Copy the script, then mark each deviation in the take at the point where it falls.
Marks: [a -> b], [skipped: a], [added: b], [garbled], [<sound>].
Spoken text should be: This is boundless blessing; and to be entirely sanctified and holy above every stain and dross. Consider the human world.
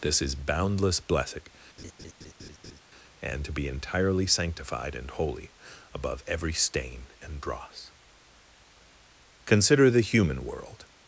This is boundless blessing; [laugh] and to be entirely sanctified and holy above every stain and dross. Consider the human world.